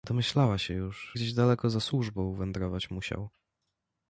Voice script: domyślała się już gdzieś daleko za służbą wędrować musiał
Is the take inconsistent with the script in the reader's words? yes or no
no